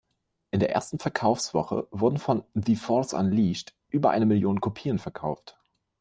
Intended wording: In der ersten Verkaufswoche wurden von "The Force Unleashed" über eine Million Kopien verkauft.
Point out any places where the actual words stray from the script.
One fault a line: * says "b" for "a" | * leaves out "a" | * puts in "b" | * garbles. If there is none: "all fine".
all fine